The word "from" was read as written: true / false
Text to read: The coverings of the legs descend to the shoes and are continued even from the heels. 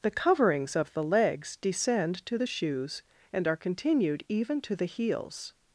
false